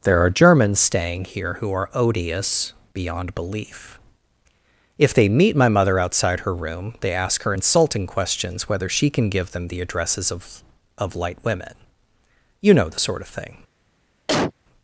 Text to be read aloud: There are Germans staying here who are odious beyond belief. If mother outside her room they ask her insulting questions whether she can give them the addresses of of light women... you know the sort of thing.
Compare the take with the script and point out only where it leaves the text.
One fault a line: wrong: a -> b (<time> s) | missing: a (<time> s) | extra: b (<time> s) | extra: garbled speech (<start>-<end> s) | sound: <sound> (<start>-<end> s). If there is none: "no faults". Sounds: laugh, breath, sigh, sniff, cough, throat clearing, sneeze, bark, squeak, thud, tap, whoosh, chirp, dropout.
extra: they meet my (5.1 s)
sound: cough (14.3-14.5 s)